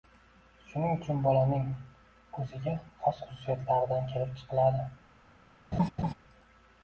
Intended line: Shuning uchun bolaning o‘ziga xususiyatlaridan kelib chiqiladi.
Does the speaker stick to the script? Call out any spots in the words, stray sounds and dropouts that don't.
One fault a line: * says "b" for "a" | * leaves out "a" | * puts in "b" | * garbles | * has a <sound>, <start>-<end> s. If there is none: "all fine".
* puts in "xos"
* has a laugh, 5.7-6.1 s